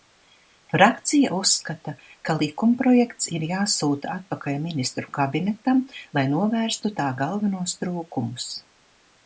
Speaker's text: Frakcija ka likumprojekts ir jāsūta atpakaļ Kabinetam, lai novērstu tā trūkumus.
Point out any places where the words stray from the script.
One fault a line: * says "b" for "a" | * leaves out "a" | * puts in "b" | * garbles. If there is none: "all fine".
* puts in "uzskata"
* puts in "Ministru"
* puts in "galvenos"